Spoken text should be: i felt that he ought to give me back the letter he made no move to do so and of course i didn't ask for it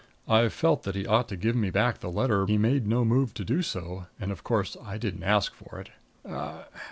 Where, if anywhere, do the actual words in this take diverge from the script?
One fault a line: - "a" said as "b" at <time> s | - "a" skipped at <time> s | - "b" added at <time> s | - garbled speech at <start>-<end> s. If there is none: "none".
none